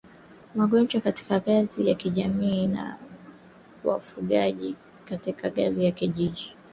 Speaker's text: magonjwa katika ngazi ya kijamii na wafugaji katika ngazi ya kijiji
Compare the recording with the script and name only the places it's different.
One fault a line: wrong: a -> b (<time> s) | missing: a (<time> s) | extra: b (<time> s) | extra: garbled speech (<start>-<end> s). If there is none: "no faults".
no faults